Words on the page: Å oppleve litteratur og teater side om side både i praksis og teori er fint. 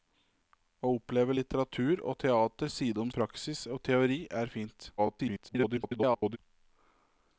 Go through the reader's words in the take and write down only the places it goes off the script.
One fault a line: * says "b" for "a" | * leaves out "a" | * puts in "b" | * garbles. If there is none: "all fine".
* leaves out "side både"
* garbles